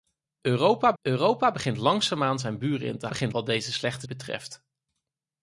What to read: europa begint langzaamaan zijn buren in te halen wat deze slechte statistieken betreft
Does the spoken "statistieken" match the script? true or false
false